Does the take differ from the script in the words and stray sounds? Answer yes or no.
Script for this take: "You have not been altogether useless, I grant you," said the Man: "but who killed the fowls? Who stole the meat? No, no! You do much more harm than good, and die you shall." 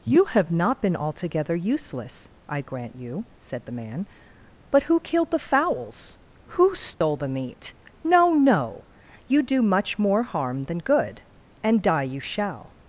yes